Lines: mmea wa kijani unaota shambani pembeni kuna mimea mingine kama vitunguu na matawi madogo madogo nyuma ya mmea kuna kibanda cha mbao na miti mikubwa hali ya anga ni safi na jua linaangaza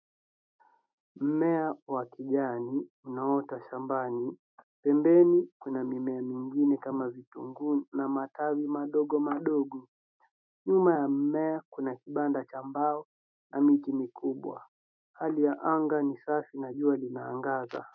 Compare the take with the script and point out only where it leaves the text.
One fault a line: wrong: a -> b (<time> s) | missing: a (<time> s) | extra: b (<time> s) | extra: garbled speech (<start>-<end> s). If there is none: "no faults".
no faults